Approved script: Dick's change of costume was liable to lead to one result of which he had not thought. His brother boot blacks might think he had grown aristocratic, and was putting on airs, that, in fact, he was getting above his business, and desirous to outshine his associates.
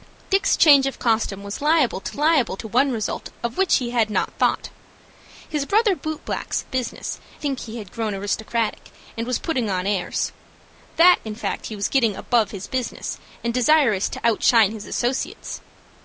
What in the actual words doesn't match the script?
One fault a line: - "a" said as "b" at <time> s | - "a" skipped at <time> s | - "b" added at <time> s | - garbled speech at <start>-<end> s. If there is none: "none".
- "lead" said as "liable" at 2.2 s
- "might" said as "business" at 6.7 s